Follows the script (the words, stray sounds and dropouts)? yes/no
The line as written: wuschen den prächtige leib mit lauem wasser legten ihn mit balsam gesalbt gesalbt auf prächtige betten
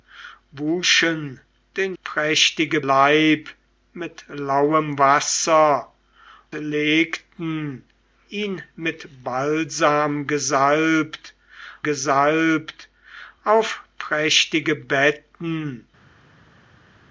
yes